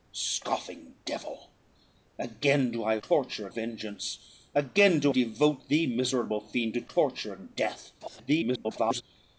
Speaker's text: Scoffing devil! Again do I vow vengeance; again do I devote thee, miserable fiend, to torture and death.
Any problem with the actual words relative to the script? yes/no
yes